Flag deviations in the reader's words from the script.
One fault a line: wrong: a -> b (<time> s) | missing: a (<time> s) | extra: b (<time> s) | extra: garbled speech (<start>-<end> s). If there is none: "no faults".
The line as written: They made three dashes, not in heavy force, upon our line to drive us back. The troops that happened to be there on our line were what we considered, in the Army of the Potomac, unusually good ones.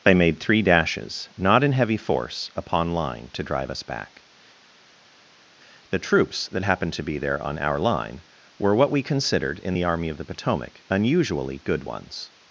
missing: our (2.9 s)